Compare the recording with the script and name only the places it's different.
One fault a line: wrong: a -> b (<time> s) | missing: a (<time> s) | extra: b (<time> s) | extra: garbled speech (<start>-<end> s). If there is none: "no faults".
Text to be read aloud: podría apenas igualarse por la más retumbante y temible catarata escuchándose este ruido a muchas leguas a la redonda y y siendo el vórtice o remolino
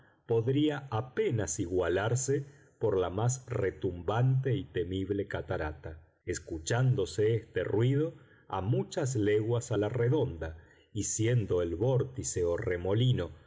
missing: y (11.0 s)